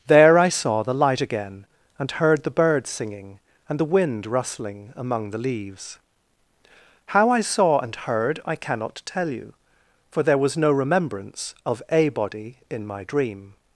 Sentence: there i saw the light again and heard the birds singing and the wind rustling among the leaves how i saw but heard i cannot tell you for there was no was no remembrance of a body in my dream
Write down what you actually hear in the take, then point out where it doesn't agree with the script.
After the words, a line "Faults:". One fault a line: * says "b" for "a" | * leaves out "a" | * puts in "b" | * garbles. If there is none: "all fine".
there i saw the light again and heard the birds singing and the wind rustling among the leaves how i saw and heard i cannot tell you for there was no remembrance of a body in my dream
Faults:
* says "and" for "but"
* leaves out "was no"